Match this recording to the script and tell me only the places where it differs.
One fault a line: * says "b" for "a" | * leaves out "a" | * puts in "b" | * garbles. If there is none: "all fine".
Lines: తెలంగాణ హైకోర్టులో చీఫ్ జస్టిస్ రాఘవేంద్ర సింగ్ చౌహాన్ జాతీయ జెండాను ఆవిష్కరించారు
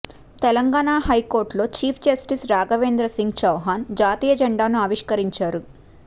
all fine